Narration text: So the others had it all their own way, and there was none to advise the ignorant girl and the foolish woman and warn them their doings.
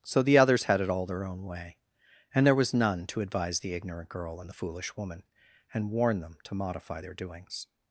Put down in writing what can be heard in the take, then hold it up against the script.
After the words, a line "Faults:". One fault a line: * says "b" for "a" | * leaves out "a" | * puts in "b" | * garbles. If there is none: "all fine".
So the others had it all their own way, and there was none to advise the ignorant girl and the foolish woman and warn them to modify their doings.
Faults:
* puts in "to modify"